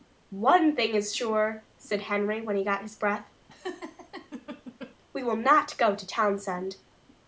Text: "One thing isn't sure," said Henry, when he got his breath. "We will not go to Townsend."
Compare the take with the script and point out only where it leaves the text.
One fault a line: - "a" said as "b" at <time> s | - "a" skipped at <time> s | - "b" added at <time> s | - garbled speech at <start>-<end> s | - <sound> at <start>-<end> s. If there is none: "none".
- "isn't" said as "is" at 0.9 s
- laugh at 3.5-5.0 s